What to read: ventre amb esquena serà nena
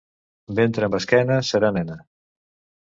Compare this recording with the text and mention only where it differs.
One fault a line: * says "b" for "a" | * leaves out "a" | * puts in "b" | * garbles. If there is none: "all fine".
all fine